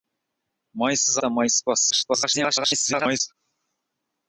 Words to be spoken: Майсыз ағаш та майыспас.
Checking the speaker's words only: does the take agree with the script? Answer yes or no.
no